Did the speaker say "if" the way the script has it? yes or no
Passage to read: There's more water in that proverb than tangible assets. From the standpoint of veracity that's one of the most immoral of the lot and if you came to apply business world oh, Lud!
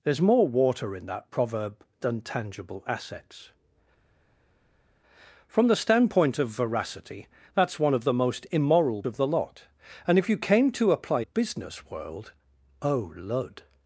yes